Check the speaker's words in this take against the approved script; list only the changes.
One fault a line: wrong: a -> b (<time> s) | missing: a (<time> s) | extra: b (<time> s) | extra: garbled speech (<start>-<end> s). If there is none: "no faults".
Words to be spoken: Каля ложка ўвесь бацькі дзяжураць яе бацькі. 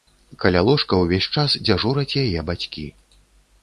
wrong: бацькі -> час (1.4 s)